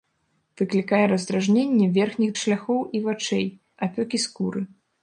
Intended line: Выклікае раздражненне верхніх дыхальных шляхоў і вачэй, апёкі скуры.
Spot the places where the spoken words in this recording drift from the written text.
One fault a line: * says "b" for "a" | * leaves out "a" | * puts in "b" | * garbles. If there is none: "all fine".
* leaves out "дыхальных"